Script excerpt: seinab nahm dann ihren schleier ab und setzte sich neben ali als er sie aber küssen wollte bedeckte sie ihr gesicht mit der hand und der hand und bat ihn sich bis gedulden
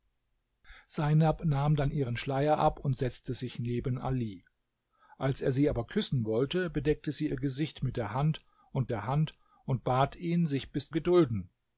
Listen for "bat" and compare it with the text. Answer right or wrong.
right